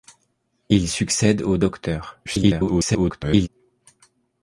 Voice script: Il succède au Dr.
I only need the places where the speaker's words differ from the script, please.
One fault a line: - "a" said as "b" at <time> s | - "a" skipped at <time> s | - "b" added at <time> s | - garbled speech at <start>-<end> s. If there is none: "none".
- garbled speech at 2.3-3.5 s